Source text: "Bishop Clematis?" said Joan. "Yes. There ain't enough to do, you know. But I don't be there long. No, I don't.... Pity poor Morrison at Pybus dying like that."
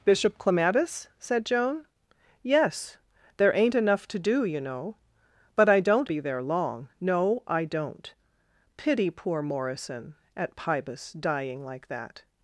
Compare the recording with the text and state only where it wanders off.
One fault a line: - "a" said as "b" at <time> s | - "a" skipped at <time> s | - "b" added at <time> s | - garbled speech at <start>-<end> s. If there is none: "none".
none